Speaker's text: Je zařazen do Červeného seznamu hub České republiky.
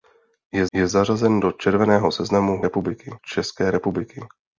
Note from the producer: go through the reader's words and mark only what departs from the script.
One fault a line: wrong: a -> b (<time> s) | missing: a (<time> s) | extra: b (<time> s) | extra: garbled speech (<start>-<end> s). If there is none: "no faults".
extra: je (0.7 s)
wrong: hub -> republiky (2.6 s)